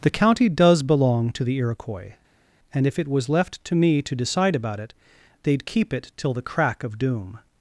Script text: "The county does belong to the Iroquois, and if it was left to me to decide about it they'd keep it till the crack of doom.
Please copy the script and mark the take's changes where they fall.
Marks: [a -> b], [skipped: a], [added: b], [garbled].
"The county does belong to the Iroquois, and if it was left to me to decide about it they'd keep it till the crack of doom.